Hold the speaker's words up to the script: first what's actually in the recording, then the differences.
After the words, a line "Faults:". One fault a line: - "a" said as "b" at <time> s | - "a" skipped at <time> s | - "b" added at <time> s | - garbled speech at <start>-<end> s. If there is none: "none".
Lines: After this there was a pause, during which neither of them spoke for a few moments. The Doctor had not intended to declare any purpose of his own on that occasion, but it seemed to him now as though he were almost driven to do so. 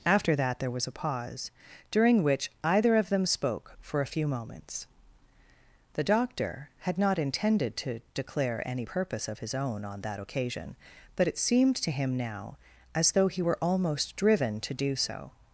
After that there was a pause, during which either of them spoke for a few moments. The Doctor had not intended to declare any purpose of his own on that occasion, but it seemed to him now as though he were almost driven to do so.
Faults:
- "this" said as "that" at 0.3 s
- "neither" said as "either" at 2.6 s